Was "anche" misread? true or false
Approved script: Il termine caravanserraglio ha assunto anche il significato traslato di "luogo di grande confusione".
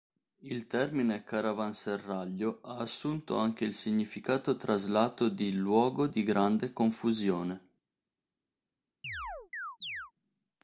false